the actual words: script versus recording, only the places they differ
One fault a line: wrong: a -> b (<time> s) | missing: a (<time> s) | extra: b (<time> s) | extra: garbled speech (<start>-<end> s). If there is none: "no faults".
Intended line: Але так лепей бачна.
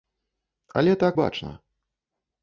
missing: лепей (1.2 s)